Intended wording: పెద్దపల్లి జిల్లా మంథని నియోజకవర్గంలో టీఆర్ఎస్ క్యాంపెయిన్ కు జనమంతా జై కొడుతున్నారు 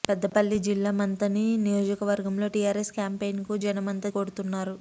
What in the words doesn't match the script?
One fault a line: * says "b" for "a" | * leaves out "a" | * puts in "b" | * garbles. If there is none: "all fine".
* leaves out "జై"